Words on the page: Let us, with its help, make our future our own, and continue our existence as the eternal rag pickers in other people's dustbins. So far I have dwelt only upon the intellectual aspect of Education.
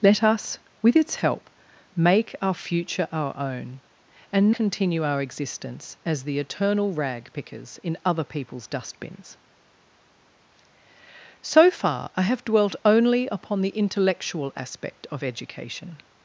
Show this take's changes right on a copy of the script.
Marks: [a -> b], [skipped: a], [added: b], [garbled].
Let us, with its help, make our future our own, and continue our existence as the eternal rag pickers in other people's dustbins. So far I have dwelt only upon the intellectual aspect of Education.